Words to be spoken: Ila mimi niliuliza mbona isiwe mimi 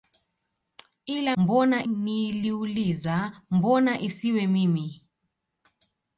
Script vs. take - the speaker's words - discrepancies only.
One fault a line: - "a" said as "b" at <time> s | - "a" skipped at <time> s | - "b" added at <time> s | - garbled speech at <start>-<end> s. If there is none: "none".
- "mimi" said as "mbona" at 1.4 s